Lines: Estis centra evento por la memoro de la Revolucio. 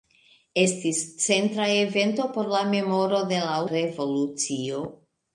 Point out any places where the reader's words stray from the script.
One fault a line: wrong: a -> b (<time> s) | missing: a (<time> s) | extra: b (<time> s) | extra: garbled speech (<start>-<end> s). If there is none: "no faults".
no faults